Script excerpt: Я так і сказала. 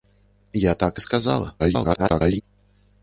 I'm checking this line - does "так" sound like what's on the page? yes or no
yes